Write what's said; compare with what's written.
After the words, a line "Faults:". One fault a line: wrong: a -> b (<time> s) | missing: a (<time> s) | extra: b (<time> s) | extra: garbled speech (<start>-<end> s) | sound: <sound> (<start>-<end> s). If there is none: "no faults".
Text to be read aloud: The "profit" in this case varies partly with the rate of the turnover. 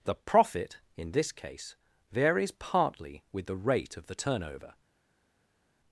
The "profit" in this case varies partly with the rate of the turnover.
Faults:
no faults